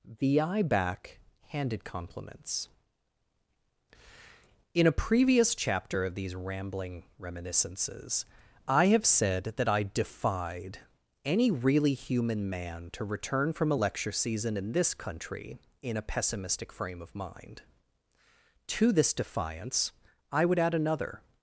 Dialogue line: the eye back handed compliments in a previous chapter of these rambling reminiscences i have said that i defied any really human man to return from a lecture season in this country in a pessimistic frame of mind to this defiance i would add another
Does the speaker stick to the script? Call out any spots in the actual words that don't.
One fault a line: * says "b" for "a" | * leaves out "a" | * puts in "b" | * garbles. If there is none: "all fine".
all fine